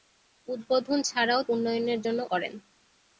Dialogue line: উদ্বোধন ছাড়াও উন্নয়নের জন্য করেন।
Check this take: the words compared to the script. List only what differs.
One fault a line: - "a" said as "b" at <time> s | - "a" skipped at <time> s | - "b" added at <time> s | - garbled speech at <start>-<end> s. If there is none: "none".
none